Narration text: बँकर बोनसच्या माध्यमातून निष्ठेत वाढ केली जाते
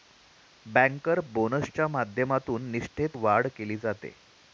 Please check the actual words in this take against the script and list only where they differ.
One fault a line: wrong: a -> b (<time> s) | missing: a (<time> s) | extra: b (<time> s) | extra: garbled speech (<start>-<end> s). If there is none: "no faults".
no faults